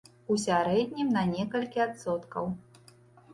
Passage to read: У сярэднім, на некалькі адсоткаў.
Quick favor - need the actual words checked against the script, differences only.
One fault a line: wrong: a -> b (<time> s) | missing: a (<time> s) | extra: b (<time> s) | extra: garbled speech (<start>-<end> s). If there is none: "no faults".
no faults